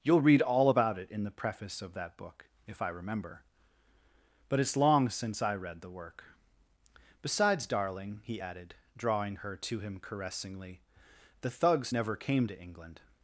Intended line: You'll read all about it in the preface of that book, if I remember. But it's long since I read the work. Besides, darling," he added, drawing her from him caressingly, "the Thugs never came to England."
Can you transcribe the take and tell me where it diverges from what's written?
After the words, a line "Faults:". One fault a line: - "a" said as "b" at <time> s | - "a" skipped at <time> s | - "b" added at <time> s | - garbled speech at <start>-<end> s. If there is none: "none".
You'll read all about it in the preface of that book, if I remember. But it's long since I read the work. Besides, darling," he added, drawing her to him caressingly, "the Thugs never came to England."
Faults:
- "from" said as "to" at 9.6 s